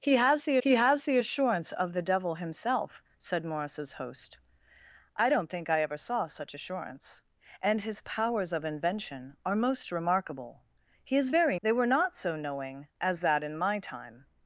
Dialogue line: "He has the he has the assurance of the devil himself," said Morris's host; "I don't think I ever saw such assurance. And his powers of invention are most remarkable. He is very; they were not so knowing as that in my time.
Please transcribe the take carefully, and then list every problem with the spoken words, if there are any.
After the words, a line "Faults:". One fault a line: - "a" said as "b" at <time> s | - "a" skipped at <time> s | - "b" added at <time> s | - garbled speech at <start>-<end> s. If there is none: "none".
"He has the he has the assurance of the devil himself," said Morris's host; "I don't think I ever saw such assurance. And his powers of invention are most remarkable. He is very; they were not so knowing as that in my time.
Faults:
none